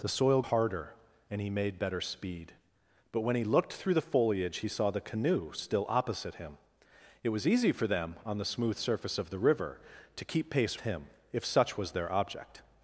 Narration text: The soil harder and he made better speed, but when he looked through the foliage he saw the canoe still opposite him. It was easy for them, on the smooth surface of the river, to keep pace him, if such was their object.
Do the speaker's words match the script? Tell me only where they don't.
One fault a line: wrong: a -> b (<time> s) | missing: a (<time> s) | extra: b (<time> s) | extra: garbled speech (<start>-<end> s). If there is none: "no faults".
no faults